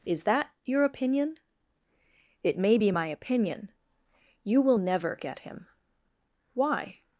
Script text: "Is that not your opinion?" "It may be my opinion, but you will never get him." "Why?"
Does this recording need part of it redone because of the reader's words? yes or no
yes